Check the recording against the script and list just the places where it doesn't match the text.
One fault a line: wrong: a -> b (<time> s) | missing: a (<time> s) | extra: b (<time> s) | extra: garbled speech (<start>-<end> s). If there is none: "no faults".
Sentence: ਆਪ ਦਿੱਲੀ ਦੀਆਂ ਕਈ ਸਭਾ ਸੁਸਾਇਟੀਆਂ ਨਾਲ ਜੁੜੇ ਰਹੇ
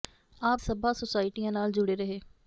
missing: ਦਿੱਲੀ ਦੀਆਂ ਕਈ (0.6 s)